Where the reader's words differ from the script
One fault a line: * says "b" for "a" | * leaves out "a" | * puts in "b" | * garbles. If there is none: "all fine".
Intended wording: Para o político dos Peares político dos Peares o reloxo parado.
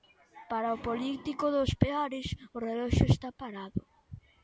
* leaves out "político dos Peares"
* puts in "está"